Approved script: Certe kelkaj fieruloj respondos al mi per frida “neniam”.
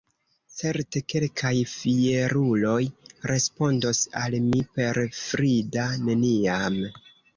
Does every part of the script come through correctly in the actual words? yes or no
yes